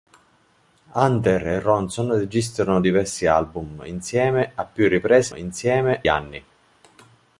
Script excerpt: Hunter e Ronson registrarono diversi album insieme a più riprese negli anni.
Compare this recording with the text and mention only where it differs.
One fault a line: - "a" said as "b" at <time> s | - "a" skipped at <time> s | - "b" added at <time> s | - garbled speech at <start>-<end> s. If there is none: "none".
- "negli" said as "insieme" at 5.3 s